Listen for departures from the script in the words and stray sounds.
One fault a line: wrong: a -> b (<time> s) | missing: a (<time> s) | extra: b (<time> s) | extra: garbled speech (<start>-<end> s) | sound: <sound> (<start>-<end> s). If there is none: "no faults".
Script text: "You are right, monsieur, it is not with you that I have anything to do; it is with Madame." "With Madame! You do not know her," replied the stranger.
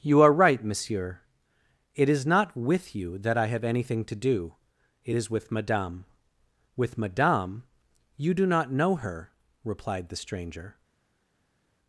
no faults